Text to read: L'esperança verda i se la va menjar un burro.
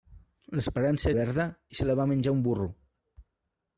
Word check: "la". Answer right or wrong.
right